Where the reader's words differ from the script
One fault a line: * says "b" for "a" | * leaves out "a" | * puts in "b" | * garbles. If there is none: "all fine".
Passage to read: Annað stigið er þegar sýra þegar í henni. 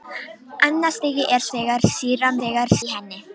all fine